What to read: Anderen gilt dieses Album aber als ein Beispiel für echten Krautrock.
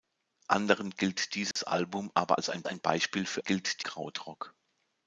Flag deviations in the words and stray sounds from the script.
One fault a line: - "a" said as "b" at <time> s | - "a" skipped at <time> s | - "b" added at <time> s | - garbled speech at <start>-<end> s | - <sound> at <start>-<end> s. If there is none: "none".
- dropout at 1.5-1.6 s
- "ein" added at 2.7 s
- "echten" said as "gilt" at 3.4 s